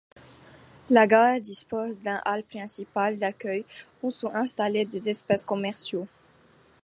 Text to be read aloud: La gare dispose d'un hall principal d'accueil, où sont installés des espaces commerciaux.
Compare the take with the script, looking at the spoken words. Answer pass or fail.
pass